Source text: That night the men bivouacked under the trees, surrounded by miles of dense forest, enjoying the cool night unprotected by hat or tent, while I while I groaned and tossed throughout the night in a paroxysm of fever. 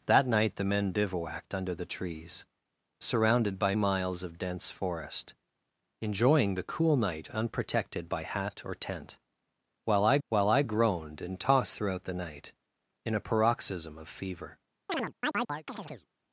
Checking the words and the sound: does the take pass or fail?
fail